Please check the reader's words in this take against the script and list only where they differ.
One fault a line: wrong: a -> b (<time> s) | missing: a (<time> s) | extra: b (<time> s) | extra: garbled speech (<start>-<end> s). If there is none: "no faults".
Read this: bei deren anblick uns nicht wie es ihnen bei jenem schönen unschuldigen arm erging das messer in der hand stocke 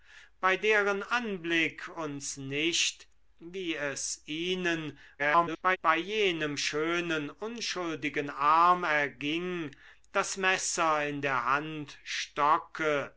extra: garbled speech (5.2-5.8 s)